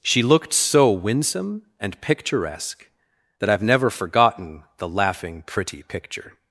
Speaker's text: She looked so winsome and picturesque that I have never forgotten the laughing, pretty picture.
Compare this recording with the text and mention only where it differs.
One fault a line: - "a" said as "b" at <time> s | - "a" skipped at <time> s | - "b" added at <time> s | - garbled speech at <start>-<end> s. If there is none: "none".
none